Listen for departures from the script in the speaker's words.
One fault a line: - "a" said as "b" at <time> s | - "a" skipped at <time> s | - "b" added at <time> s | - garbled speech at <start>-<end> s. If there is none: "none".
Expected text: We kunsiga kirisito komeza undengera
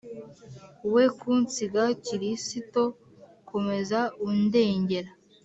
none